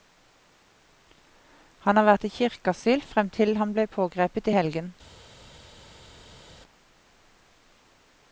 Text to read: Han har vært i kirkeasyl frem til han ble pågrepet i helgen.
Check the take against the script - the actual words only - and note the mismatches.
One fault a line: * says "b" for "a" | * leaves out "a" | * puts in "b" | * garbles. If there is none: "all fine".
all fine